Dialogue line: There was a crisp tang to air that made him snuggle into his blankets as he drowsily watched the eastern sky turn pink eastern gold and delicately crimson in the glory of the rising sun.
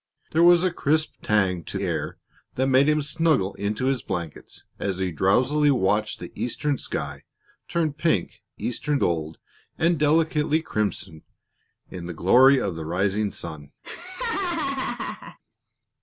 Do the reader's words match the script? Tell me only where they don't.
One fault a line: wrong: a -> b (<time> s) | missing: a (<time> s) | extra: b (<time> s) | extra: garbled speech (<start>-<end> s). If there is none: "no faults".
no faults